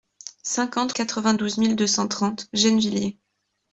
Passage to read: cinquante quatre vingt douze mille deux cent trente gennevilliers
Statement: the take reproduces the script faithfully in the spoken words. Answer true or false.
true